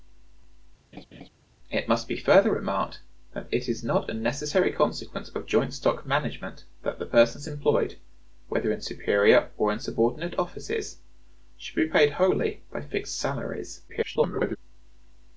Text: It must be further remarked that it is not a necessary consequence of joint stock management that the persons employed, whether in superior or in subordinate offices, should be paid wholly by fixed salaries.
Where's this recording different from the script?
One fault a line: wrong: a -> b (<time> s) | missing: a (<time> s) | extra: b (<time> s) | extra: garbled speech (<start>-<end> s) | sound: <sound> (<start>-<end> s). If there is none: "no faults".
sound: laugh (0.9-1.3 s)
extra: garbled speech (13.9-14.6 s)